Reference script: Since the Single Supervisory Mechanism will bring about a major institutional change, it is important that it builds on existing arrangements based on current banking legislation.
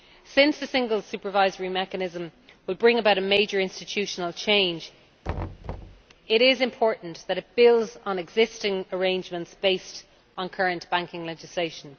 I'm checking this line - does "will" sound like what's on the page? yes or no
yes